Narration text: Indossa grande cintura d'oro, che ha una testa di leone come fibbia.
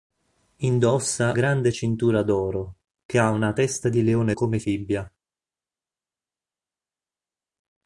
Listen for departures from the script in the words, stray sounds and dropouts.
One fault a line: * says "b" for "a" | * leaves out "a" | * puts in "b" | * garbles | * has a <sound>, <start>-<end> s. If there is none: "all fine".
all fine